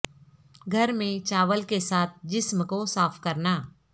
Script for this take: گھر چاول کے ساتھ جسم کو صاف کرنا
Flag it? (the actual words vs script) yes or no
yes